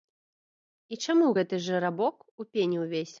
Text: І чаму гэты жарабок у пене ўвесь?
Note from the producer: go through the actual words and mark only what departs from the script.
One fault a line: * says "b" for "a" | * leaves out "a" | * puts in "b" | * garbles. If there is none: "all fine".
all fine